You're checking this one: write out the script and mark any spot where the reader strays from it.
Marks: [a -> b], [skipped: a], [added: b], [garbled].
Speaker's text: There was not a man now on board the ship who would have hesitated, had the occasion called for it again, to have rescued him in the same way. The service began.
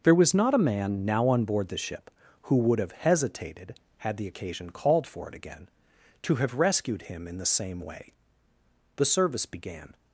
There was not a man now on board the ship who would have hesitated, had the occasion called for it again, to have rescued him in the same way. The service began.